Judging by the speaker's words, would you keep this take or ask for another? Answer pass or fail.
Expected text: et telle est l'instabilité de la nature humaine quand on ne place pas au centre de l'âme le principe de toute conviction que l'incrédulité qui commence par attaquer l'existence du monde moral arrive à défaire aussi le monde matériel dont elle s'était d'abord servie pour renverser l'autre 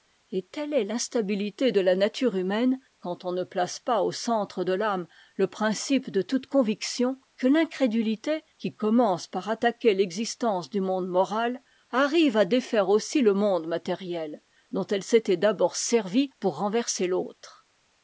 pass